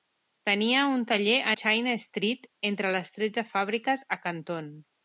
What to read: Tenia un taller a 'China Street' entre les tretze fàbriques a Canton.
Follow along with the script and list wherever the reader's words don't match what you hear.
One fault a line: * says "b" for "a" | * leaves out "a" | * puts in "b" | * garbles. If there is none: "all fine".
all fine